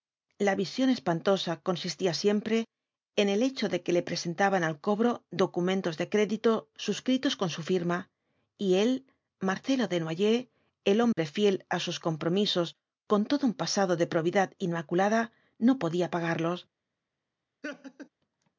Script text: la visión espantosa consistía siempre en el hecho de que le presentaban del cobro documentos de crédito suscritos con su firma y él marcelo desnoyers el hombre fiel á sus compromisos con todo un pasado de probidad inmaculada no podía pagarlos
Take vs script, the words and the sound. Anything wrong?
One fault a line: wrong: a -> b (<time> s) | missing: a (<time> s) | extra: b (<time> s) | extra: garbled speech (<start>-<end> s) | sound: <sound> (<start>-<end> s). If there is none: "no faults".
wrong: del -> al (4.6 s)
sound: dropout (11.1-11.2 s)
sound: laugh (17.6-18.1 s)